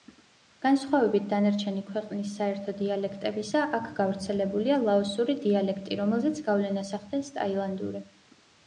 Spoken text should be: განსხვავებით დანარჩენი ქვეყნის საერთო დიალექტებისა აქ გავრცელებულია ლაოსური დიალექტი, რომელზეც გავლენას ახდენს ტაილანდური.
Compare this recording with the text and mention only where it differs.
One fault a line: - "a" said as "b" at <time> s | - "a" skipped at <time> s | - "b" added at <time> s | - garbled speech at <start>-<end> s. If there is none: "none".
none